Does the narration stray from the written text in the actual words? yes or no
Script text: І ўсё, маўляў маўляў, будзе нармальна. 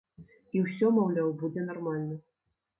yes